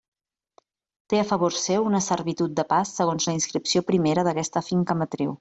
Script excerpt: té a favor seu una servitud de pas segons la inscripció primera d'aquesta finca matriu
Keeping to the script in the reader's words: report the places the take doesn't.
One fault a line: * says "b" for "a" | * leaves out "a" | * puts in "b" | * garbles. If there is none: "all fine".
all fine